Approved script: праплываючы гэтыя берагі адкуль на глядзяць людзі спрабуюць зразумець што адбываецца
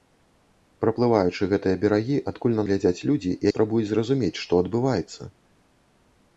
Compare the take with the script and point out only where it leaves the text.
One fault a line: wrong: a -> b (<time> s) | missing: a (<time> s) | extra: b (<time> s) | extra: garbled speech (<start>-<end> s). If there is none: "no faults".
no faults